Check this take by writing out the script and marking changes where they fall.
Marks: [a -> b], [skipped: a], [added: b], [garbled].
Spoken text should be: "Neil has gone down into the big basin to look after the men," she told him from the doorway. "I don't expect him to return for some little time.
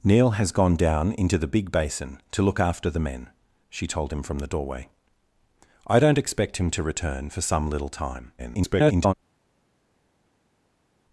"Neil has gone down into the big basin to look after the men," she told him from the doorway. "I don't expect him to return for some little time. [garbled]